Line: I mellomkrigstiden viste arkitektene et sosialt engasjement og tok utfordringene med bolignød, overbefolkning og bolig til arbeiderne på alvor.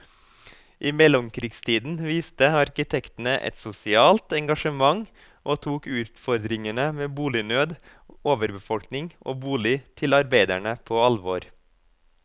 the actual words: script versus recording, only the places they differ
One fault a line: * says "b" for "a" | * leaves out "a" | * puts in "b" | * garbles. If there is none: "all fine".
all fine